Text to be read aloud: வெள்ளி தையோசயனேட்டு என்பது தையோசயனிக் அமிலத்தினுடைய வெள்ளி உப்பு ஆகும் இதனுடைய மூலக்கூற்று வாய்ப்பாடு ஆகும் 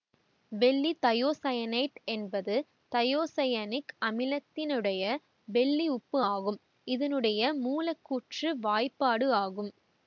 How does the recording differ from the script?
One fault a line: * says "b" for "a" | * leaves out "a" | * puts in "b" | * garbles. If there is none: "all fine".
all fine